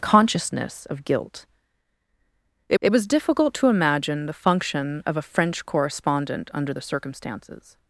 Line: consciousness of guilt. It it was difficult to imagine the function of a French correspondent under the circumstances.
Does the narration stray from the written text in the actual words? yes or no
no